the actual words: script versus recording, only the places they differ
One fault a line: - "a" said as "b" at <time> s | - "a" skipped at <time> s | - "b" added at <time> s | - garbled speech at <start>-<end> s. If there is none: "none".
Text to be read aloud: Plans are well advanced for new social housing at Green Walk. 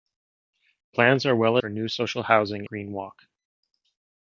- "advanced" skipped at 1.6 s
- "at" skipped at 2.7 s